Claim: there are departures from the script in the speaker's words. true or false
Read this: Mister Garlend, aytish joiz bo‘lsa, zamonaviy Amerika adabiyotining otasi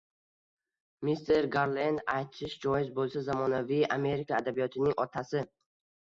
false